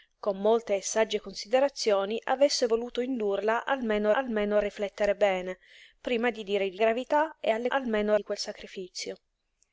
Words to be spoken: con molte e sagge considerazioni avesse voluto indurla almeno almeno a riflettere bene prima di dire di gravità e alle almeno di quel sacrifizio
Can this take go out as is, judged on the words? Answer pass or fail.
pass